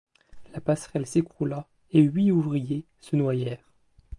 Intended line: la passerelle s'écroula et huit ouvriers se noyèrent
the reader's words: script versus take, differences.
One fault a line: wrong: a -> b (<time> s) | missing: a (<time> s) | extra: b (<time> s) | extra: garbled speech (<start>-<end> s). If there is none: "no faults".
no faults